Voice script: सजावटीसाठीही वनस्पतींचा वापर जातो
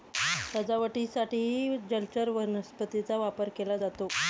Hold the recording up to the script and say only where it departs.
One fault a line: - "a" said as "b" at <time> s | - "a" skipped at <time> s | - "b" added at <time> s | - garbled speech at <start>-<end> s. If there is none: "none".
- "जलचर" added at 1.9 s
- "केला" added at 3.5 s